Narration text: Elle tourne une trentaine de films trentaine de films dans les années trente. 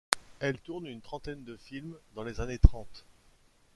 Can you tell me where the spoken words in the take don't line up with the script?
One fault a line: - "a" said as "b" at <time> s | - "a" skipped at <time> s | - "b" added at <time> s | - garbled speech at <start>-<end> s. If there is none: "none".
- "trentaine de films" skipped at 1.9 s